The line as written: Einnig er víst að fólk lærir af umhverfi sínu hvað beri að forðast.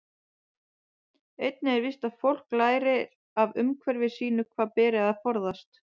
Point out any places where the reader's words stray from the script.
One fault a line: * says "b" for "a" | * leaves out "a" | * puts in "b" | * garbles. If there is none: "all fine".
all fine